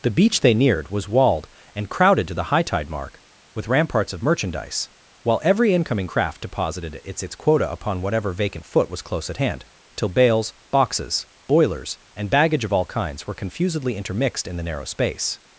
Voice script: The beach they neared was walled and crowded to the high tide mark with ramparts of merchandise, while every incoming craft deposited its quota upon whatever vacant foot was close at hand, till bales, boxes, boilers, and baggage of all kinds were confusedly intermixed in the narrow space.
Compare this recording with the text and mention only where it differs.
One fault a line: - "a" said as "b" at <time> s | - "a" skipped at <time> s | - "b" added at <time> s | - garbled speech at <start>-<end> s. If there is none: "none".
- "its" added at 7.2 s